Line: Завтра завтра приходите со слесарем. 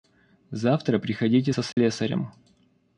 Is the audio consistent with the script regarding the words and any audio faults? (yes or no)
no